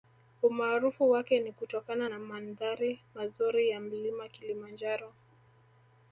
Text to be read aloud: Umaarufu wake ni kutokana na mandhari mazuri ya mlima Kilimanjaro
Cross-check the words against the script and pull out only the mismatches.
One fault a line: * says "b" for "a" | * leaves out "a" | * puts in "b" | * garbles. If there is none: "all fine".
all fine